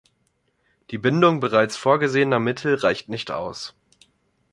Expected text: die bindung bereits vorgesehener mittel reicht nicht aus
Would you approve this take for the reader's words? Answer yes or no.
yes